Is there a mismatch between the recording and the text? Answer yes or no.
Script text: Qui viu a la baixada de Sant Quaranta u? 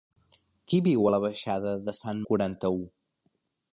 no